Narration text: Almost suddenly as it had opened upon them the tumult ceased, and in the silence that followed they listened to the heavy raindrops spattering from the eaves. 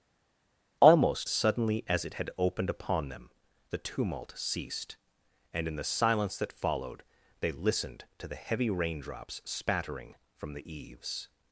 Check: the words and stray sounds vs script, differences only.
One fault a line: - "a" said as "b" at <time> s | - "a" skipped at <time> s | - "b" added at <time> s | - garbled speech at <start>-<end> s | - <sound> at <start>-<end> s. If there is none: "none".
none